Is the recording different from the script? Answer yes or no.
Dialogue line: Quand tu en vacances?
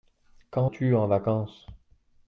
no